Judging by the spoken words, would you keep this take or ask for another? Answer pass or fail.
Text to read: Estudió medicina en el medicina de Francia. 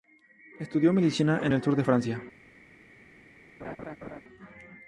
fail